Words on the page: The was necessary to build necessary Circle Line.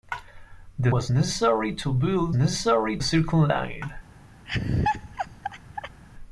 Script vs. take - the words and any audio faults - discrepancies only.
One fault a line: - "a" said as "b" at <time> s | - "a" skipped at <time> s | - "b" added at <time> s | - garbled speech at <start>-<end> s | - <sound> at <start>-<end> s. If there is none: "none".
- laugh at 4.5-6.0 s